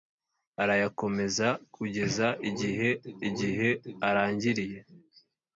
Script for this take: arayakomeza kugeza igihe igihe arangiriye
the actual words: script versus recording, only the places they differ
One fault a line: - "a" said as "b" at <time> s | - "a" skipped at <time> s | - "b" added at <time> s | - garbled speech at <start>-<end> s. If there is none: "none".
none